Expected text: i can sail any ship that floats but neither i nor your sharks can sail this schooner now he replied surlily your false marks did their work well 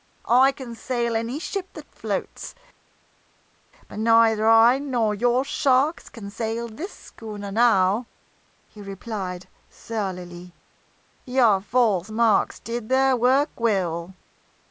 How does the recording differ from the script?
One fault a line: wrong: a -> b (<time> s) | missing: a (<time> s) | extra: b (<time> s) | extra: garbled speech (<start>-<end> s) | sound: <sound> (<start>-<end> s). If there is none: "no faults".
no faults